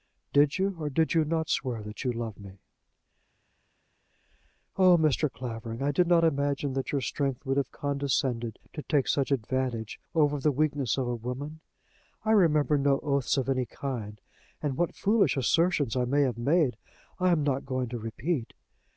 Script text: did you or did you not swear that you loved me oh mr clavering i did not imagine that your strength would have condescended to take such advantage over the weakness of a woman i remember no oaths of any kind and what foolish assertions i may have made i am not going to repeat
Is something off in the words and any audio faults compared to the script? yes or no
no